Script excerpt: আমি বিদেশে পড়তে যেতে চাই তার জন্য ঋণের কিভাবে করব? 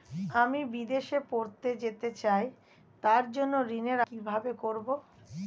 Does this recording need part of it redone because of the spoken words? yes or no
no